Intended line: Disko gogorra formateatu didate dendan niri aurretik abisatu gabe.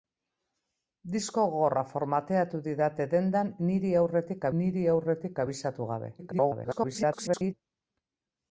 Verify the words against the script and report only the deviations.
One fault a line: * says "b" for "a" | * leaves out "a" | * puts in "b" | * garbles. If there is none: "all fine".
* puts in "niri aurretik"
* garbles